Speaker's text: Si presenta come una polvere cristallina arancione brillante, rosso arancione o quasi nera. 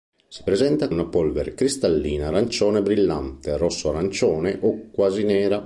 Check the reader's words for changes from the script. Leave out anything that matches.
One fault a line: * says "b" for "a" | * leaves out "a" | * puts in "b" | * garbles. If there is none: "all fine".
* leaves out "come"